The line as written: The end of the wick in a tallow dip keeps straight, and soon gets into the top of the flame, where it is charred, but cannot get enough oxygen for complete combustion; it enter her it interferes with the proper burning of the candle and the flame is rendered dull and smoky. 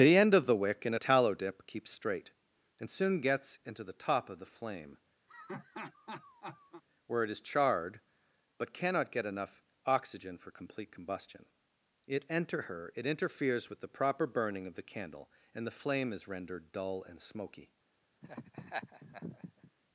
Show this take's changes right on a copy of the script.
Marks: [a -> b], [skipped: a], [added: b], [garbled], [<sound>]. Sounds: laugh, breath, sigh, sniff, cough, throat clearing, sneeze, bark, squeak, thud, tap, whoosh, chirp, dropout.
The end of the wick in a tallow dip keeps straight, and soon gets into the top of the flame, [laugh] where it is charred, but cannot get enough oxygen for complete combustion; it enter her it interferes with the proper burning of the candle and the flame is rendered dull and smoky. [laugh]